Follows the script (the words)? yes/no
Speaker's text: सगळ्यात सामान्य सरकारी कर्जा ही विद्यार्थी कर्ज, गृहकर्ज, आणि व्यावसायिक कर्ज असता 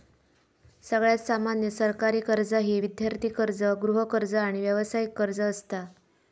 yes